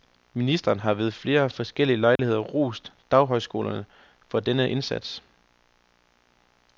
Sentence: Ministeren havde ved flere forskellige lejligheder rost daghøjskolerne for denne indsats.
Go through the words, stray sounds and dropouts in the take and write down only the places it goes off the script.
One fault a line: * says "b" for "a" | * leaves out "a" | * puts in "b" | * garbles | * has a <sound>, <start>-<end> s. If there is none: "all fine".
* says "har" for "havde"
* has a dropout, 2.2-2.2 s